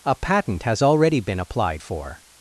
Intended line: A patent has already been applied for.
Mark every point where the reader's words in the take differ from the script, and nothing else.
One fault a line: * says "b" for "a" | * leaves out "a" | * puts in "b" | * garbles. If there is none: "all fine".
all fine